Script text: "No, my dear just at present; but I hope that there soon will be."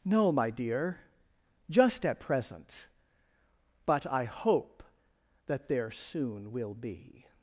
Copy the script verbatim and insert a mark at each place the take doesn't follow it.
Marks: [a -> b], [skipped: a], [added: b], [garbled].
"No, my dear just at present; but I hope that there soon will be."